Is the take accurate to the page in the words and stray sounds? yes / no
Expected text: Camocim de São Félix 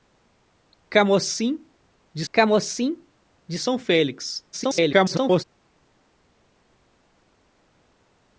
no